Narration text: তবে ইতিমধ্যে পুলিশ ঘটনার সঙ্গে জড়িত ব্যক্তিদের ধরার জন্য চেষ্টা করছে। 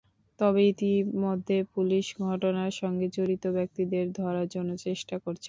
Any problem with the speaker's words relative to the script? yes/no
no